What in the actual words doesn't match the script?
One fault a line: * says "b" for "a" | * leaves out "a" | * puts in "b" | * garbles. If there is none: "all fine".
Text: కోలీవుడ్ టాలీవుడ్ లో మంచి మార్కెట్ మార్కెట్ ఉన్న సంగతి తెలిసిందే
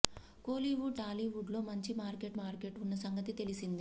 all fine